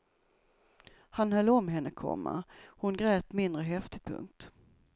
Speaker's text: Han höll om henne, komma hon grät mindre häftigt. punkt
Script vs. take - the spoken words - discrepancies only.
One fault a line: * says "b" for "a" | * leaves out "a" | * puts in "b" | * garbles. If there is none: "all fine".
all fine